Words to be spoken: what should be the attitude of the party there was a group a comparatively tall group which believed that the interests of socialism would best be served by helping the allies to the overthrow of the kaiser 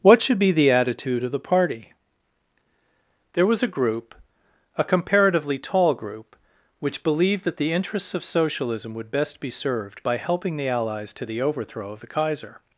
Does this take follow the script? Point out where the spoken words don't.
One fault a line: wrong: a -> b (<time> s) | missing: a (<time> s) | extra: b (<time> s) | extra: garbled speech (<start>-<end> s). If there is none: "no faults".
no faults